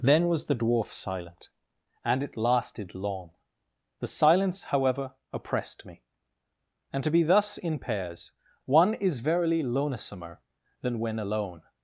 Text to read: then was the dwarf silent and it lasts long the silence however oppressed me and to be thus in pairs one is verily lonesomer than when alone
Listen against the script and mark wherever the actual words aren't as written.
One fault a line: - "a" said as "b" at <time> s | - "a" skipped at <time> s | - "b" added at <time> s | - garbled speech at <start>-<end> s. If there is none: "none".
- "lasts" said as "lasted" at 2.4 s